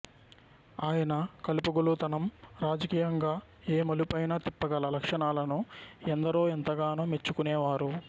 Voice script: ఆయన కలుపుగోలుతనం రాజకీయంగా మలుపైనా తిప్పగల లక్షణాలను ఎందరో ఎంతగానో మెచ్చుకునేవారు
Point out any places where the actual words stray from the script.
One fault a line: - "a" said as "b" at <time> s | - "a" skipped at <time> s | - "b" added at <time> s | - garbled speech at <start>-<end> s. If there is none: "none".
- "ఏ" added at 3.7 s